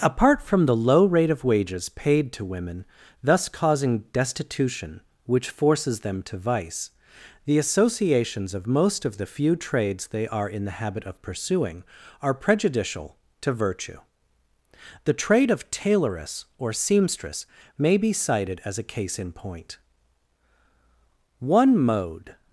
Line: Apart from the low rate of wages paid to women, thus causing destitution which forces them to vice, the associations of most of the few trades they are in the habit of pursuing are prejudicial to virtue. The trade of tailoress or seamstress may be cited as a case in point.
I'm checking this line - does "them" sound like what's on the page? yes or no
yes